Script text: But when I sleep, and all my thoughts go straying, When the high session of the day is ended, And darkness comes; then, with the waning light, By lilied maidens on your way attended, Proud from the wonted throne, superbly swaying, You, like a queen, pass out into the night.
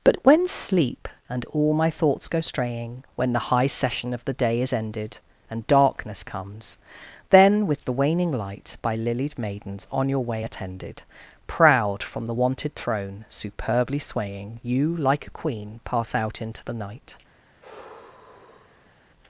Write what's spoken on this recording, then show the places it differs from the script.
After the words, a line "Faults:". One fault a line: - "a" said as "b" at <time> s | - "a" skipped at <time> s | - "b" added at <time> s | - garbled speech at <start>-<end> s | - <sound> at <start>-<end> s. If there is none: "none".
But when sleep, and all my thoughts go straying, When the high session of the day is ended, And darkness comes; then, with the waning light, By lilied maidens on your way attended, Proud from the wonted throne, superbly swaying, You, like a queen, pass out into the night.
Faults:
- "I" skipped at 0.5 s
- sigh at 17.6-18.9 s